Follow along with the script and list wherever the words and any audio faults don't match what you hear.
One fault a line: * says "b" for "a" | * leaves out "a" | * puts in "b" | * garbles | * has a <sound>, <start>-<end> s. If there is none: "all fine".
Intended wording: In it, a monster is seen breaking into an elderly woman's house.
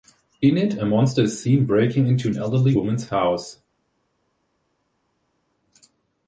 all fine